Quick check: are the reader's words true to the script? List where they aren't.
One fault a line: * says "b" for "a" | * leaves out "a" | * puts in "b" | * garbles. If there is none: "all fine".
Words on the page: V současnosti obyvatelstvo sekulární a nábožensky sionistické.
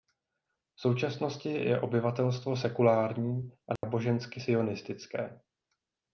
* puts in "je"